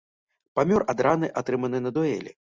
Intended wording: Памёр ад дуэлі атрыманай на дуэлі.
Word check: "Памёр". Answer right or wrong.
right